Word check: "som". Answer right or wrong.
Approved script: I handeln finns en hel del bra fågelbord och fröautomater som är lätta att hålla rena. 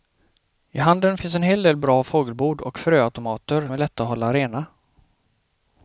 wrong